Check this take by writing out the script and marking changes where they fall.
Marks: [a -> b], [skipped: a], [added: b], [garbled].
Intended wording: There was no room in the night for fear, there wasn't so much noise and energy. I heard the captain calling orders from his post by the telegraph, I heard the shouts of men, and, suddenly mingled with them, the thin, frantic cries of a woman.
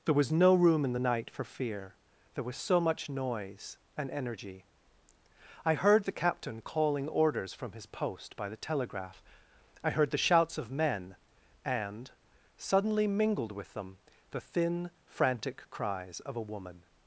There was no room in the night for fear, there [wasn't -> was] so much noise and energy. I heard the captain calling orders from his post by the telegraph, I heard the shouts of men, and, suddenly mingled with them, the thin, frantic cries of a woman.